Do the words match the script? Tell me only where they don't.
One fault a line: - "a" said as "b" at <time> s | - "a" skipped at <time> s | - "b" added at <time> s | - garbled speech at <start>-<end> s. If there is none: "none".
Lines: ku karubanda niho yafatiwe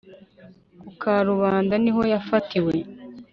none